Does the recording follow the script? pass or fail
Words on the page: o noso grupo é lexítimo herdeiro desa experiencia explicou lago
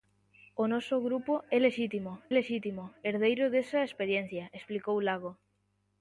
fail